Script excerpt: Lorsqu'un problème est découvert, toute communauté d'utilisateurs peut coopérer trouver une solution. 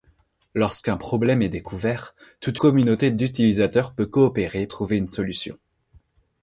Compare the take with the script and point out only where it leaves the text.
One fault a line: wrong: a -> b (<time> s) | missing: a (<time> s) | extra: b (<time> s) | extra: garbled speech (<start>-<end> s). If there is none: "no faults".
no faults